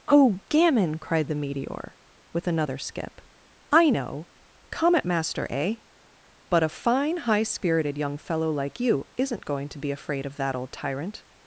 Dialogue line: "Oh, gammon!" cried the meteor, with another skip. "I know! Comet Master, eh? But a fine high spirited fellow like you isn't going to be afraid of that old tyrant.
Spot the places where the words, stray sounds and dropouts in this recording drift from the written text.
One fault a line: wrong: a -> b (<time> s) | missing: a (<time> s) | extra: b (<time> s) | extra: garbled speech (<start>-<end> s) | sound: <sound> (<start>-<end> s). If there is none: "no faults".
extra: young (8.0 s)